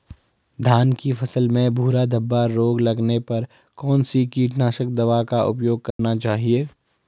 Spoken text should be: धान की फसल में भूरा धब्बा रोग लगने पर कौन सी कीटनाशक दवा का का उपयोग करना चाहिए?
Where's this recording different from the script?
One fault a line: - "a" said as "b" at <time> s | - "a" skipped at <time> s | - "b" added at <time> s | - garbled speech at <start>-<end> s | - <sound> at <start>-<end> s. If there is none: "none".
- "का" skipped at 5.4 s
- dropout at 5.9-6.0 s